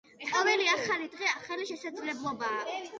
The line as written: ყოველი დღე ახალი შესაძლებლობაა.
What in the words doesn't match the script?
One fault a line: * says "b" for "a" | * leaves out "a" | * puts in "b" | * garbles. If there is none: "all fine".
* puts in "ახალი"